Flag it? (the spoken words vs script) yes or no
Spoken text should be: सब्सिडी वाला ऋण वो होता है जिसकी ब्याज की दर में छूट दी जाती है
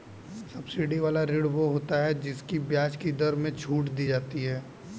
no